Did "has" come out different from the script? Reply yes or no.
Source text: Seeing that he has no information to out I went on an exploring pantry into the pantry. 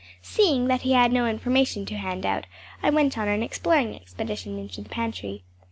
yes